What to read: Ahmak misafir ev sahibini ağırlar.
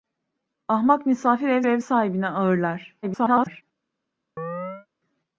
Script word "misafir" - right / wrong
right